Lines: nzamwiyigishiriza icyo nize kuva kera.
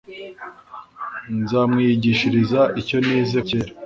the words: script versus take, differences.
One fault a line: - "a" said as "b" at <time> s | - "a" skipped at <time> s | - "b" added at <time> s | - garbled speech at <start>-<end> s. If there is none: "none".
- "kuva" skipped at 3.4 s